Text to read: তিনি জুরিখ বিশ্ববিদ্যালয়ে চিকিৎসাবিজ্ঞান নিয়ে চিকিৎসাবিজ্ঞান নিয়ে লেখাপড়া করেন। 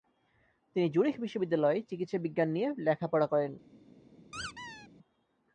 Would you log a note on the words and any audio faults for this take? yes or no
yes